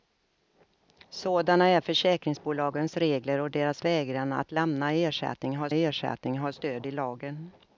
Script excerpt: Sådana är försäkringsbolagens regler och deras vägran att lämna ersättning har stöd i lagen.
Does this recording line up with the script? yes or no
no